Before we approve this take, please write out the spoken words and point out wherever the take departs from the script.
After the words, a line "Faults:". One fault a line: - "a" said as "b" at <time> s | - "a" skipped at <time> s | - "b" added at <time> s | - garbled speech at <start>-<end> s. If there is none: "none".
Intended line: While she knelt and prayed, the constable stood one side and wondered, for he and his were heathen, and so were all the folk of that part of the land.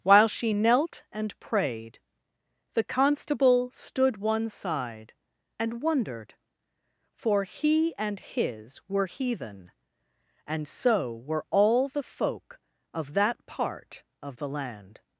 While she knelt and prayed, the constable stood one side and wondered, for he and his were heathen, and so were all the folk of that part of the land.
Faults:
none